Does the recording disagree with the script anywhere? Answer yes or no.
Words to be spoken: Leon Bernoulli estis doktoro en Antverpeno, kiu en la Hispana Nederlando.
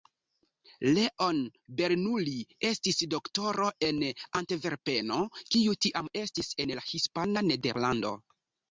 yes